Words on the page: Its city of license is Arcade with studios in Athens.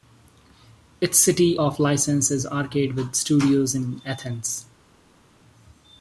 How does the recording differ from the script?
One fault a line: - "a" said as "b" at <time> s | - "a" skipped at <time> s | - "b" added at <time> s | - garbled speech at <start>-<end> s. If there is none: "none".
none